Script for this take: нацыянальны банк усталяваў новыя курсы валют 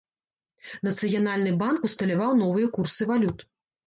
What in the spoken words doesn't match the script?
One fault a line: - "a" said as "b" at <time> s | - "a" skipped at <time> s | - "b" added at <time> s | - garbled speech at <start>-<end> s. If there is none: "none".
none